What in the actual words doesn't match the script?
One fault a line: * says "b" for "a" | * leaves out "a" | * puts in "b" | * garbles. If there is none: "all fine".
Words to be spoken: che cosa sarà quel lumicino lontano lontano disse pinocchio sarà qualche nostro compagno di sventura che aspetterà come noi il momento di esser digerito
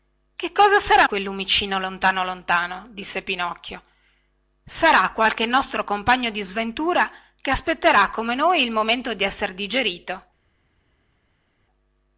all fine